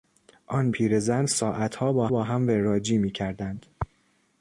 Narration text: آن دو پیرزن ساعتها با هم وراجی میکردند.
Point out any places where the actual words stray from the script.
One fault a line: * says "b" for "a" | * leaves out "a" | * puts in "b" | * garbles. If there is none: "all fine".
* leaves out "دو"
* puts in "با"